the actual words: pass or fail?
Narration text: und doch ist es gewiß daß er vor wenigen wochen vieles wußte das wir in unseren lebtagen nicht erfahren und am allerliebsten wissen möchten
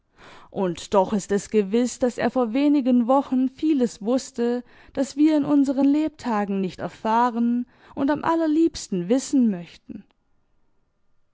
pass